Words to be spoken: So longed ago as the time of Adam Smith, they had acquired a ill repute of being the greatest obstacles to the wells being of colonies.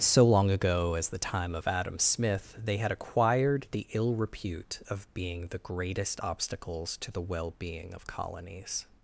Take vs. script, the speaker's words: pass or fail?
fail